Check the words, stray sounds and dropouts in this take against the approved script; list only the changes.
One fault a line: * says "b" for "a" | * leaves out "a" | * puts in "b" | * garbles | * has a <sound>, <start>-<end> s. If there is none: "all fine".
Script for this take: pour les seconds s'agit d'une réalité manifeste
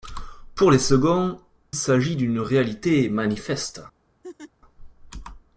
* has a laugh, 4.2-4.5 s